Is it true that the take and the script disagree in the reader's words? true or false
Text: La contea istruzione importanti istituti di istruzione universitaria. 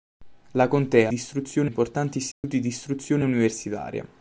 false